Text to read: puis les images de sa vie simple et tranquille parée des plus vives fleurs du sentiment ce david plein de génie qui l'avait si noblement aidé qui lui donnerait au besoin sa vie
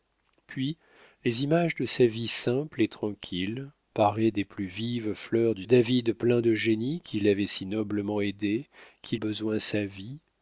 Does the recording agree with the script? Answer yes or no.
no